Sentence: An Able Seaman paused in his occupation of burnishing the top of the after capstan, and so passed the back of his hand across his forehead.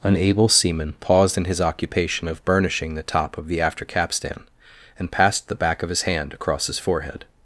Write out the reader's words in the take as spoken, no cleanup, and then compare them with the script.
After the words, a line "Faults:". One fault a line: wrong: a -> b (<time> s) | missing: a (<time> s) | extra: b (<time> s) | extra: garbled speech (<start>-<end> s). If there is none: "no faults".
An Able Seaman paused in his occupation of burnishing the top of the after capstan, and passed the back of his hand across his forehead.
Faults:
missing: so (5.1 s)